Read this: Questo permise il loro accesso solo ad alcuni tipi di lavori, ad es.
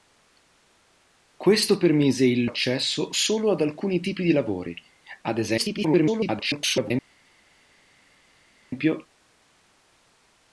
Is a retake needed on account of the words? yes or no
yes